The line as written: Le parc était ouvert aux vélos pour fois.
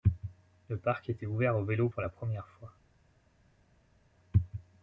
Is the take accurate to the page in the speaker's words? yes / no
no